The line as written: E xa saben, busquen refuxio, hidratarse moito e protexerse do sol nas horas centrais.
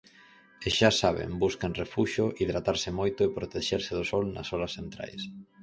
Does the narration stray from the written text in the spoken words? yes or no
no